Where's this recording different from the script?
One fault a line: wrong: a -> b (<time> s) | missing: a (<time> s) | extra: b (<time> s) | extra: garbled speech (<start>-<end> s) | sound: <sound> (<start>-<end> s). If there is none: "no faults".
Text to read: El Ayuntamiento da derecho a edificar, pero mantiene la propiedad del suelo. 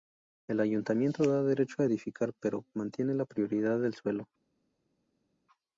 no faults